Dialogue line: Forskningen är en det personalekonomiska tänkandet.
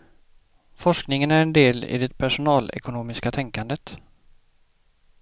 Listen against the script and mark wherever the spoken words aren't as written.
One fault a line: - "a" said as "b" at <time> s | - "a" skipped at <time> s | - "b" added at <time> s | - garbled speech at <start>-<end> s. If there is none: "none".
- "del i" added at 1.5 s